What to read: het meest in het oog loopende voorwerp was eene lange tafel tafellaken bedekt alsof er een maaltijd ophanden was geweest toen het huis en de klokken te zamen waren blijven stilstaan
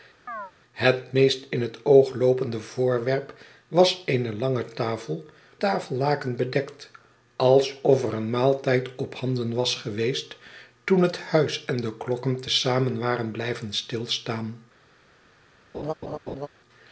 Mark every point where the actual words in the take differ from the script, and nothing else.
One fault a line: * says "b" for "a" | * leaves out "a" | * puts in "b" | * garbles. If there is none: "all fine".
all fine